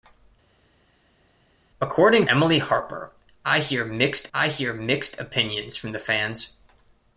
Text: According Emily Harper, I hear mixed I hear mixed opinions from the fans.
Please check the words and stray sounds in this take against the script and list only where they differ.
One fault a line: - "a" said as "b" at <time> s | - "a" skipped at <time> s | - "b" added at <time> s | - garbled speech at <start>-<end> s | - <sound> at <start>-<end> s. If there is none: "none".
none